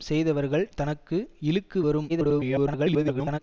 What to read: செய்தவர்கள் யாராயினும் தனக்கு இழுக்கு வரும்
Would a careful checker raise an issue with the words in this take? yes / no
yes